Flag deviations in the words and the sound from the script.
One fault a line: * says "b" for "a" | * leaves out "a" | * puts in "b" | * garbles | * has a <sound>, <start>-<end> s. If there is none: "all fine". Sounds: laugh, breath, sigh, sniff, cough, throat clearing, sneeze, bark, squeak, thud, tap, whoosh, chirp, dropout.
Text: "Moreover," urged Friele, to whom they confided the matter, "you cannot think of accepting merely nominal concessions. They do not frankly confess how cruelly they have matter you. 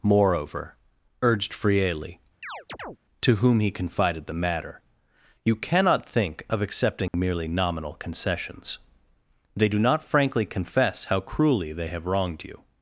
* has a chirp, 2.4-3.0 s
* says "he" for "they"
* has a dropout, 7.1-7.1 s
* says "wronged" for "matter"